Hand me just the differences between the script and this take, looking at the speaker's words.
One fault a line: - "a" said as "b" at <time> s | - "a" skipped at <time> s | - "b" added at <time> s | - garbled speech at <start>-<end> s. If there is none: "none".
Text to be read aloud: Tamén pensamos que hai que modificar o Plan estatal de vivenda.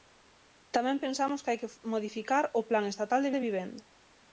- "de" added at 3.3 s